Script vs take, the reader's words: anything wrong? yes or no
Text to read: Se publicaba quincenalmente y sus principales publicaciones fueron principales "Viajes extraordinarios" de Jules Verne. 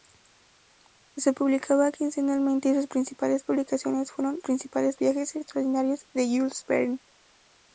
no